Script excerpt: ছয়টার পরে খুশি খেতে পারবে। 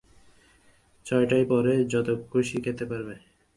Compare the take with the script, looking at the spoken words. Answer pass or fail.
fail